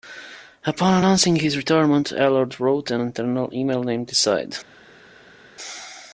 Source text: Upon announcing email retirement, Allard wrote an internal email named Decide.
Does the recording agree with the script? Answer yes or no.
no